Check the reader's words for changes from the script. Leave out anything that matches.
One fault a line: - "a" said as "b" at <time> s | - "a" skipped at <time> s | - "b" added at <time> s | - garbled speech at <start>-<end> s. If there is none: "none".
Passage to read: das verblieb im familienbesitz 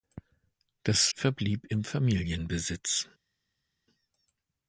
none